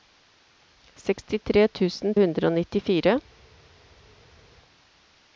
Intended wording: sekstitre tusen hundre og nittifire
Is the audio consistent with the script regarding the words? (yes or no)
yes